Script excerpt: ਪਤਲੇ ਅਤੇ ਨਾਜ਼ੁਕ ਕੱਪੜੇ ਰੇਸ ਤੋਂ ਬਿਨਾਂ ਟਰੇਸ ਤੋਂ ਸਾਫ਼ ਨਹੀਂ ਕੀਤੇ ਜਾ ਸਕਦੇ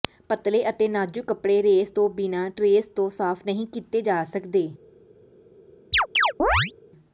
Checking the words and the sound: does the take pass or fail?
fail